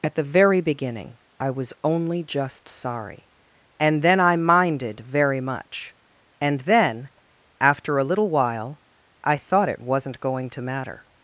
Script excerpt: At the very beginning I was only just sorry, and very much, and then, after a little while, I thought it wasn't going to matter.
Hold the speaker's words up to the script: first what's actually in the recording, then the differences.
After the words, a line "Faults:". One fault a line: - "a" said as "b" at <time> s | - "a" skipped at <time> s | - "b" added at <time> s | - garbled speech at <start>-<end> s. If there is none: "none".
At the very beginning I was only just sorry, and then I minded very much, and then, after a little while, I thought it wasn't going to matter.
Faults:
- "then I minded" added at 4.0 s